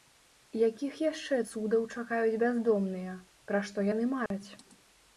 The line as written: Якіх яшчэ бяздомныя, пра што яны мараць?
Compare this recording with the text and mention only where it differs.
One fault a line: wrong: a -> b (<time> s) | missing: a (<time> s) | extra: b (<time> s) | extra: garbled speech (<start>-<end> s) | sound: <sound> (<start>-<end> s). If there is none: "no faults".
extra: цудаў чакаюць (1.5 s)
sound: dropout (4.3-4.3 s)